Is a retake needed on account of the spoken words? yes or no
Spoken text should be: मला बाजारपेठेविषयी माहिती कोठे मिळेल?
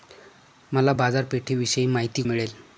yes